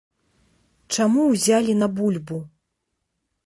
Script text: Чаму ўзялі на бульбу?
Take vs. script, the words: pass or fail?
pass